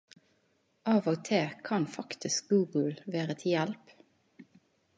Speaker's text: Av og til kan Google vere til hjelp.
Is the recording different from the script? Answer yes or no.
yes